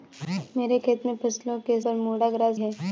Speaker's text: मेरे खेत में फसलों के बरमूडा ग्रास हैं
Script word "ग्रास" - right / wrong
right